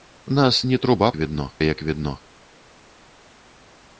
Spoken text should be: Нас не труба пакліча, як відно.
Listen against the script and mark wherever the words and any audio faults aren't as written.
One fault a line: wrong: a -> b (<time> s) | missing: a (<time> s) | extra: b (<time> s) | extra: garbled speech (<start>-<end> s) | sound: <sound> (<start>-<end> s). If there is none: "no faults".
wrong: пакліча -> відно (1.2 s)